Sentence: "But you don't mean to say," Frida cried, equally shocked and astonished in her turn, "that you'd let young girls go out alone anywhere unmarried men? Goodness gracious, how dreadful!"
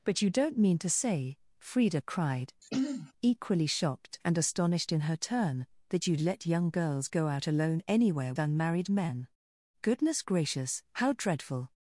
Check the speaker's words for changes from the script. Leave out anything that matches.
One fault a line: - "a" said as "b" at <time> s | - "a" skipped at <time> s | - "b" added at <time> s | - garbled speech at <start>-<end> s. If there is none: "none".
none